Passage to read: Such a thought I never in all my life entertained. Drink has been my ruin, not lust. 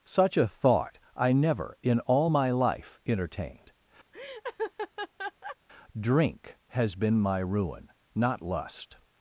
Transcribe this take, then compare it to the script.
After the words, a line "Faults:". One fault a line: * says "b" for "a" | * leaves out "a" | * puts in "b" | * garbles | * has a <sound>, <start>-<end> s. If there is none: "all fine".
Such a thought I never in all my life entertained. Drink has been my ruin, not lust.
Faults:
* has a laugh, 4.1-5.6 s